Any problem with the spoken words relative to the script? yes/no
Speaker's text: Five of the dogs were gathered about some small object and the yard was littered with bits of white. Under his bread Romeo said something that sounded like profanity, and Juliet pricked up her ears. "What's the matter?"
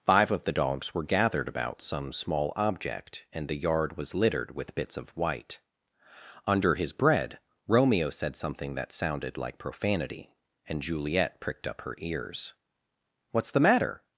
no